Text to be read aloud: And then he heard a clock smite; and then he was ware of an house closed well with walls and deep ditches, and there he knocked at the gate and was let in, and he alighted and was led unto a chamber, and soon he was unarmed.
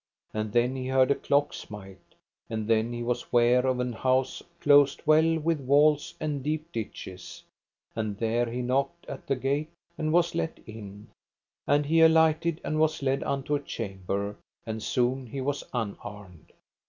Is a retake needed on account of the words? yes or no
no